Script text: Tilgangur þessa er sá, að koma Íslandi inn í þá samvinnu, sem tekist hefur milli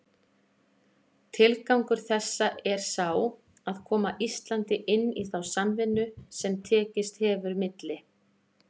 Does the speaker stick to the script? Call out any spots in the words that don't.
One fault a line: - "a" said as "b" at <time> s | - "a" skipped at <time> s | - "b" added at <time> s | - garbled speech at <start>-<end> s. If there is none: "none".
none